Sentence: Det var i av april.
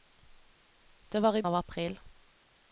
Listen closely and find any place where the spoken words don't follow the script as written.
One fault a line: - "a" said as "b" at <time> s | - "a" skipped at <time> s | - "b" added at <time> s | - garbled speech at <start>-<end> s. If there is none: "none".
none